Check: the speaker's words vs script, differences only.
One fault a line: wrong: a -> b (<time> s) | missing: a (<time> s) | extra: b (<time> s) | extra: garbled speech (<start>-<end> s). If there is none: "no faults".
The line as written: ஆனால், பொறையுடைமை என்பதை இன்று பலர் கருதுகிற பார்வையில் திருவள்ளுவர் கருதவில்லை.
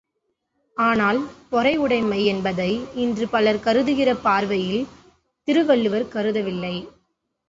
no faults